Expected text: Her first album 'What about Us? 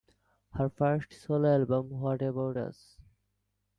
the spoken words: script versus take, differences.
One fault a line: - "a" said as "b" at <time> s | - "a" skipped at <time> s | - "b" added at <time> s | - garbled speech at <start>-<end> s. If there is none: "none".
- "solo" added at 1.1 s